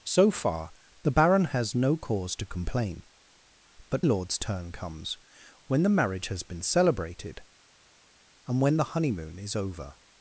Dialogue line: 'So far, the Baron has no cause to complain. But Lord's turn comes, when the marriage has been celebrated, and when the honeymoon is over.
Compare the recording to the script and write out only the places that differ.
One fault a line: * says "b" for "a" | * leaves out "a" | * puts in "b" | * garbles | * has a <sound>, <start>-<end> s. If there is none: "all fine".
all fine